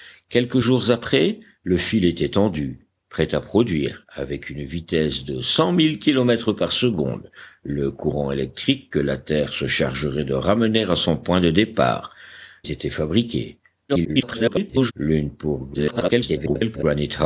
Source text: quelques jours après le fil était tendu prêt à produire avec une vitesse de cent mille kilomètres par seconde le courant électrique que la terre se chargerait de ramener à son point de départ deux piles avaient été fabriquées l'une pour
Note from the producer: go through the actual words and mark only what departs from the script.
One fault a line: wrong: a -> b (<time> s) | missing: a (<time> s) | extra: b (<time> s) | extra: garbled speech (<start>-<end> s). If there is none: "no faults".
missing: deux piles avaient (12.1 s)
extra: garbled speech (13.9-14.9 s)
extra: garbled speech (15.7-16.8 s)